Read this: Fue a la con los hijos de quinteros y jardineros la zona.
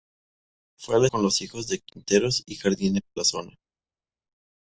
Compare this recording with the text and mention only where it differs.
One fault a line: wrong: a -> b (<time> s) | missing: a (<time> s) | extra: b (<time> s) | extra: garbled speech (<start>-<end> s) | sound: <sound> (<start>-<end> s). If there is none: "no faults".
no faults